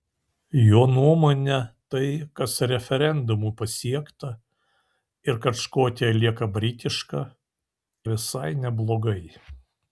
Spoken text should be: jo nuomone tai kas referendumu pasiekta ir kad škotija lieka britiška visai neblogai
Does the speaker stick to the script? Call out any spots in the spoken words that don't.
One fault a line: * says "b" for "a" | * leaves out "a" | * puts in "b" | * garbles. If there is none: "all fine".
all fine